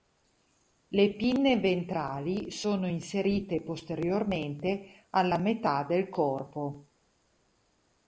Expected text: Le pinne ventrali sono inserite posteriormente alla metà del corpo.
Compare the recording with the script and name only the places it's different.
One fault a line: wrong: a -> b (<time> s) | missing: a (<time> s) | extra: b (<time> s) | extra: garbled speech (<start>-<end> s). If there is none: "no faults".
no faults